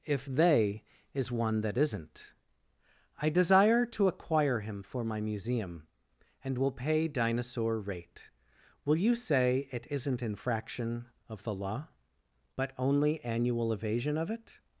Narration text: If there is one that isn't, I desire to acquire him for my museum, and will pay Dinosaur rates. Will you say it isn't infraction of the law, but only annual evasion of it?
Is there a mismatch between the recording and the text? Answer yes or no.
yes